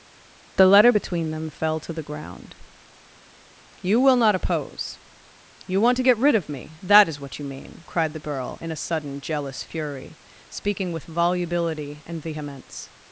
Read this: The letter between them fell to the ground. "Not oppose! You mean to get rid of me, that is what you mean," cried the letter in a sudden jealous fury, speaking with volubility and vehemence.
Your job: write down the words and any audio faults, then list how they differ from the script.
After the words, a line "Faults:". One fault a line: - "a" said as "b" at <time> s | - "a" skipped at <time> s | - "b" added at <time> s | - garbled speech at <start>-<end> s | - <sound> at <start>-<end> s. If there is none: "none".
The letter between them fell to the ground. "You will not oppose! You want to get rid of me, that is what you mean," cried the girl in a sudden jealous fury, speaking with volubility and vehemence.
Faults:
- "You will" added at 3.8 s
- "mean" said as "want" at 5.8 s
- "letter" said as "girl" at 8.3 s